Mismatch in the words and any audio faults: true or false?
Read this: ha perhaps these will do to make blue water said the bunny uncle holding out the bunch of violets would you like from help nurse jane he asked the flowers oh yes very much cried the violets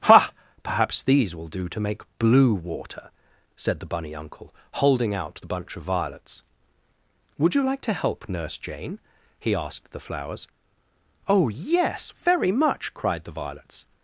true